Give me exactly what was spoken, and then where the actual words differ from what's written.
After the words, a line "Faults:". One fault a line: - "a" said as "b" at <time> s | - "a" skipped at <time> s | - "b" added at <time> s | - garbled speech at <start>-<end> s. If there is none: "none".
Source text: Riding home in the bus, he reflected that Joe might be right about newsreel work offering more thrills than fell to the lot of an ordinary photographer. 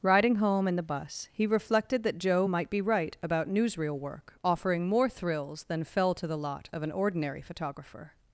Riding home in the bus, he reflected that Joe might be right about newsreel work offering more thrills than fell to the lot of an ordinary photographer.
Faults:
none